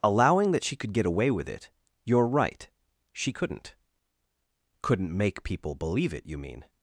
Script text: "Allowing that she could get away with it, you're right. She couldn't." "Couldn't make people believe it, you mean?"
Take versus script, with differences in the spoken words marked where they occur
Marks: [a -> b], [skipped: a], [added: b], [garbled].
"Allowing that she could get away with it, you're right. She couldn't." "Couldn't make people believe it, you mean?"